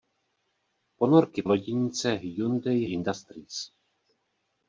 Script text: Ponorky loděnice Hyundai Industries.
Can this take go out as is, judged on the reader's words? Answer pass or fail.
pass